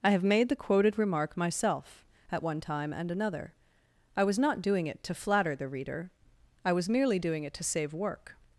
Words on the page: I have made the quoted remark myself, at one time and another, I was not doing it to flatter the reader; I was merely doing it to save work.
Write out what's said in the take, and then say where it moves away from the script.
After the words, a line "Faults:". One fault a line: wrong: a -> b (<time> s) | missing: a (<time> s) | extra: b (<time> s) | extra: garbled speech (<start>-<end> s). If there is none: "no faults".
I have made the quoted remark myself, at one time and another, I was not doing it to flatter the reader; I was merely doing it to save work.
Faults:
no faults